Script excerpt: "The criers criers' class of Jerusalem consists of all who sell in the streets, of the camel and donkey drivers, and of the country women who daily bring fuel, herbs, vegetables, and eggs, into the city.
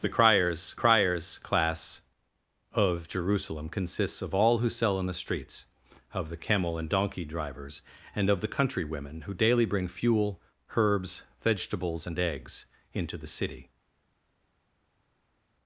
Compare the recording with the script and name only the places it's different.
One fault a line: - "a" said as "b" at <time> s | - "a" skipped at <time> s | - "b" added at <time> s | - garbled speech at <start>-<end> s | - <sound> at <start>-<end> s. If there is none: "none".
none